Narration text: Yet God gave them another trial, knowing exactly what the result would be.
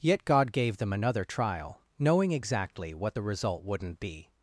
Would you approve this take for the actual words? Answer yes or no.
no